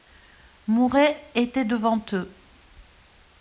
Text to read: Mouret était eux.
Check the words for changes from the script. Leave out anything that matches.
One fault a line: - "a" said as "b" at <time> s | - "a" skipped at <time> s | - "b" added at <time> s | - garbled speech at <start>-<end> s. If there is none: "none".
- "devant" added at 1.6 s